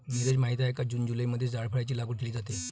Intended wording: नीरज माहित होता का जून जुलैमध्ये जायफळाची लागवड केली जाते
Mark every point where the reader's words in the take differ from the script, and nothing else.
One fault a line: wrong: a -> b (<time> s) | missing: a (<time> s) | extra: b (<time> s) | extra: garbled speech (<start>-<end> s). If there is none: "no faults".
wrong: होता -> आहे (0.6 s)